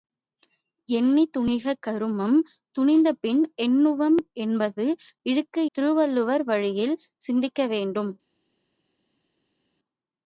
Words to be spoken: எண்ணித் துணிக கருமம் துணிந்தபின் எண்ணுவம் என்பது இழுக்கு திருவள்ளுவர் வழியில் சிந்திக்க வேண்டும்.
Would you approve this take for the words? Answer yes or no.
yes